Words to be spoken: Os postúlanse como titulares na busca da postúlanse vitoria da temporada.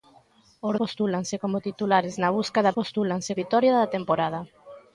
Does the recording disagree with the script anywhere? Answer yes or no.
no